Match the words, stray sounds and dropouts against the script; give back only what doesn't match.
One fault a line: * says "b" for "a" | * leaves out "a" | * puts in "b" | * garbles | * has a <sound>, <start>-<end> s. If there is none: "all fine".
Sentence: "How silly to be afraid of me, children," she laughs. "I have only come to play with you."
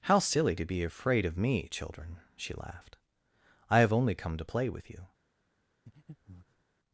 * says "laughed" for "laughs"
* has a breath, 5.9-6.6 s